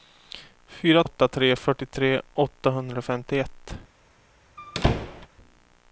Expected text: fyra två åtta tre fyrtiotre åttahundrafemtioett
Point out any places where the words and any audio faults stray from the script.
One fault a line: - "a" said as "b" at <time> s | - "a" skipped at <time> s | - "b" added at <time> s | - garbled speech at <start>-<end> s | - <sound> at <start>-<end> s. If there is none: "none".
- "två" skipped at 1.0 s
- squeak at 4.6-5.3 s